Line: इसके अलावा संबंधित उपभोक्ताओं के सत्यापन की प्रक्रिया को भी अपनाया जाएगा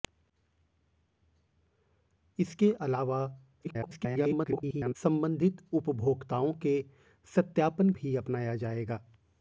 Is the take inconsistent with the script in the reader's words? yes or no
yes